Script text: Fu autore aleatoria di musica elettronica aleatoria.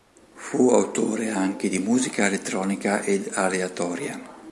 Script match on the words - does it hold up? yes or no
no